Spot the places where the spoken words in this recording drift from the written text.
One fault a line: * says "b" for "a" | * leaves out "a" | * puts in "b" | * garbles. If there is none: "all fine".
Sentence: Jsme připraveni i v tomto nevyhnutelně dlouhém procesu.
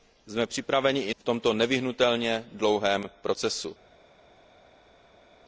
all fine